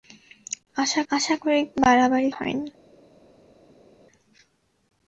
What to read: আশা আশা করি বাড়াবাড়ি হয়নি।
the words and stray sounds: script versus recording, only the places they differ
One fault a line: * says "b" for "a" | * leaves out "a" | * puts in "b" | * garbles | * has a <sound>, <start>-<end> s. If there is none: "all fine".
all fine